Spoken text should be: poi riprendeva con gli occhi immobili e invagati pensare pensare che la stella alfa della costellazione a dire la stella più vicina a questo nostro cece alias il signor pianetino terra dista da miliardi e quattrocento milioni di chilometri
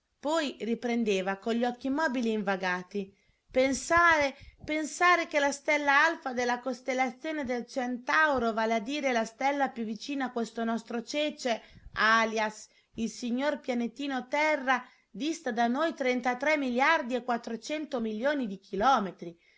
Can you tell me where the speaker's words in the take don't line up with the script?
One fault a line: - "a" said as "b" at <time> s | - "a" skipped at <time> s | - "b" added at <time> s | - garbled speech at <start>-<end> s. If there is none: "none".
- "del centauro vale" added at 7.4 s
- "noi trentatré" added at 15.7 s